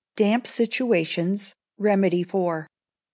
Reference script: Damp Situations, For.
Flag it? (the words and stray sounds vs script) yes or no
yes